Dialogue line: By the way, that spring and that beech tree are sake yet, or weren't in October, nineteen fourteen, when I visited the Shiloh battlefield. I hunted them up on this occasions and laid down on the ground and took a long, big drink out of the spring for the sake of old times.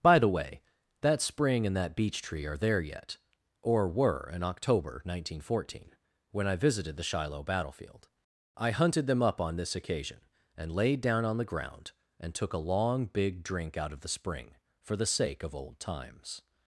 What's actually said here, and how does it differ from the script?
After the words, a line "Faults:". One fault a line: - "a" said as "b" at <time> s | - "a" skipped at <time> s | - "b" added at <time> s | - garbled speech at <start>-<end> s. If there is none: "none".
By the way, that spring and that beech tree are there yet, or were in October, nineteen fourteen, when I visited the Shiloh battlefield. I hunted them up on this occasion and laid down on the ground and took a long, big drink out of the spring for the sake of old times.
Faults:
- "sake" said as "there" at 2.6 s
- "weren't" said as "were" at 3.9 s
- "occasions" said as "occasion" at 9.7 s